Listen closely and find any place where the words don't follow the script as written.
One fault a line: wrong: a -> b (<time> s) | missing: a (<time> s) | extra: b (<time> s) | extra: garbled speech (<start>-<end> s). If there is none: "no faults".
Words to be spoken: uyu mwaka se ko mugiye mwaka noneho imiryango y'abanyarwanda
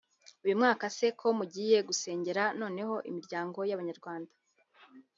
wrong: mwaka -> gusengera (1.9 s)